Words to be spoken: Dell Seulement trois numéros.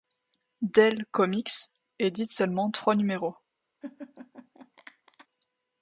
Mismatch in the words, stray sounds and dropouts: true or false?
true